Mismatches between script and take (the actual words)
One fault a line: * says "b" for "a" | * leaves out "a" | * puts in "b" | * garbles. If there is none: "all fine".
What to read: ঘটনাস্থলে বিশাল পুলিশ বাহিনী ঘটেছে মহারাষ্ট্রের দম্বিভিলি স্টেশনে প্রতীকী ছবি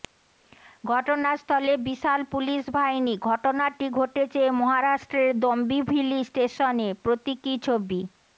* puts in "ঘটনাটি"